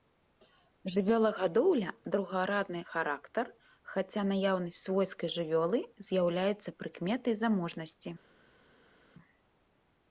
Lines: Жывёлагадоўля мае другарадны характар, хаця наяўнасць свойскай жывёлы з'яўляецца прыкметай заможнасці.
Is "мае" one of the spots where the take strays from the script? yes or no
yes